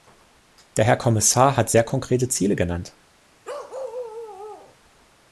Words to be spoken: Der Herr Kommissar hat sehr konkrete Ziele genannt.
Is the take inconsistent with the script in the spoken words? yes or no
no